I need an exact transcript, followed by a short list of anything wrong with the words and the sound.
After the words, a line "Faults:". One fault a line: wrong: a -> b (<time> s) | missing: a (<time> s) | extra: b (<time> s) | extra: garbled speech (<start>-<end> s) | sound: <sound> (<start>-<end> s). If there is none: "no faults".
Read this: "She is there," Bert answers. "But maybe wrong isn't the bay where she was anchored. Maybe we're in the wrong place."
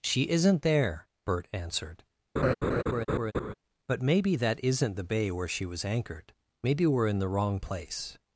"She isn't there," Bert answered. "But maybe that isn't the bay where she was anchored. Maybe we're in the wrong place."
Faults:
wrong: is -> isn't (0.3 s)
wrong: answers -> answered (1.5 s)
sound: laugh (2.4-3.5 s)
wrong: wrong -> that (4.4 s)